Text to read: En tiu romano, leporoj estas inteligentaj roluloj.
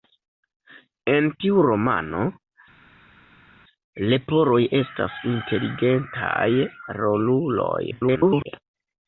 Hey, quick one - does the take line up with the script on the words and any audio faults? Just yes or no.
no